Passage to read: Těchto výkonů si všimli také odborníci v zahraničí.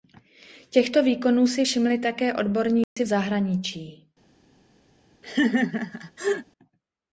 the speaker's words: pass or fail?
pass